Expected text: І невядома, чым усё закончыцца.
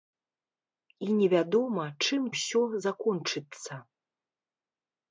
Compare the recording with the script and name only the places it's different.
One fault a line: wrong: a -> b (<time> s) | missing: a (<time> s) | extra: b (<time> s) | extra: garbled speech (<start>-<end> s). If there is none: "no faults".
no faults